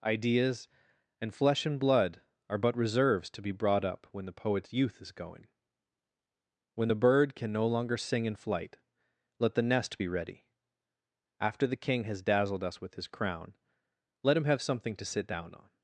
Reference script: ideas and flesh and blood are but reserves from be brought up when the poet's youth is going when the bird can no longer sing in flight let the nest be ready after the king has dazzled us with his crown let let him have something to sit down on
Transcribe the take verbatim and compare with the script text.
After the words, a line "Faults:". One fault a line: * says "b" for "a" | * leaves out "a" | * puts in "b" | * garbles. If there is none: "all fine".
ideas and flesh and blood are but reserves to be brought up when the poet's youth is going when the bird can no longer sing in flight let the nest be ready after the king has dazzled us with his crown let him have something to sit down on
Faults:
* says "to" for "from"
* leaves out "let"